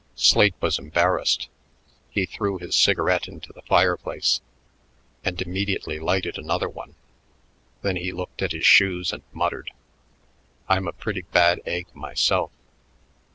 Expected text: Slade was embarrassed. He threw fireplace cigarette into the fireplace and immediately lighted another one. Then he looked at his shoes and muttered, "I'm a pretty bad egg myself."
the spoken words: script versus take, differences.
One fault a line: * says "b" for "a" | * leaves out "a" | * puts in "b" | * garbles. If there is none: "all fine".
* says "his" for "fireplace"